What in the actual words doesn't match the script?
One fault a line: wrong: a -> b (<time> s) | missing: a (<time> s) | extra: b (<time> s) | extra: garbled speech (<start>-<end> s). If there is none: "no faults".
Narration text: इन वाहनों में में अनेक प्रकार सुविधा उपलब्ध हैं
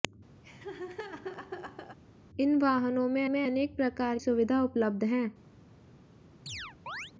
no faults